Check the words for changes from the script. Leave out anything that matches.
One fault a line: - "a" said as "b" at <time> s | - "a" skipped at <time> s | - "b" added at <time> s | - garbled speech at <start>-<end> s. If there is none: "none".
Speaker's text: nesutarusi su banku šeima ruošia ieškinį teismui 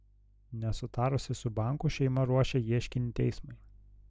none